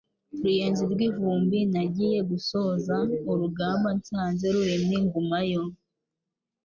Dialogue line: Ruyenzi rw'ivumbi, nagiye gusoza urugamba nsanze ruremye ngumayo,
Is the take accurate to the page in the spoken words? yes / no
yes